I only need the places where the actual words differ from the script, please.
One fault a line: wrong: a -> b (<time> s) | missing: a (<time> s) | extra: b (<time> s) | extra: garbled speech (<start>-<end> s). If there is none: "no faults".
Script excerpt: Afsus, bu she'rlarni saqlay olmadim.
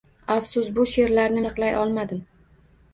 no faults